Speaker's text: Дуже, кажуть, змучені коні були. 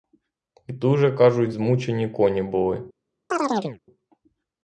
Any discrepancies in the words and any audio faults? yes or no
yes